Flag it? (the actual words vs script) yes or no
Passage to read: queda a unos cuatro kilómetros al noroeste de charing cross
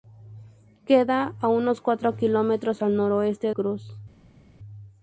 yes